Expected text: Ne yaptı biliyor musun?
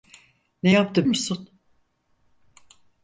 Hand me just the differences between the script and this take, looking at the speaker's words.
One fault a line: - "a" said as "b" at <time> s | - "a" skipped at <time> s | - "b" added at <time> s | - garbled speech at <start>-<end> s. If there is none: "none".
- "biliyor" skipped at 1.1 s